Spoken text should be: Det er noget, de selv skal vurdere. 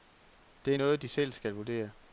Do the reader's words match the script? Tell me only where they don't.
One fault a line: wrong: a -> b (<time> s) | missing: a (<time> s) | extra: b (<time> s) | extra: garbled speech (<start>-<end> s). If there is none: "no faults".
no faults